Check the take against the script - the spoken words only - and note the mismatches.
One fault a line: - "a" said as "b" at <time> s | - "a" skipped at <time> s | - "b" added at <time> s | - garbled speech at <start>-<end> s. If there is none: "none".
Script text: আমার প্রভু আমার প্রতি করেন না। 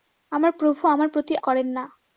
none